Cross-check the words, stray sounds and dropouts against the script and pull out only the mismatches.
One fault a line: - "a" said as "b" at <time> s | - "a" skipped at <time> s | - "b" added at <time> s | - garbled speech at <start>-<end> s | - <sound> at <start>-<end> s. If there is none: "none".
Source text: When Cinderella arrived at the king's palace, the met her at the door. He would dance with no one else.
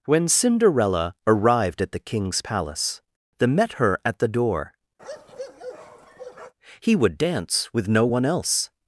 - bark at 5.0-6.5 s